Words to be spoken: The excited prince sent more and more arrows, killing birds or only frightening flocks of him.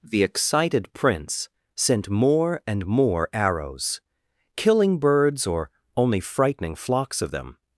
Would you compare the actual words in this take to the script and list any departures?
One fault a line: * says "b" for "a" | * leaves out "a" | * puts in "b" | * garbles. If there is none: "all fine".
* says "them" for "him"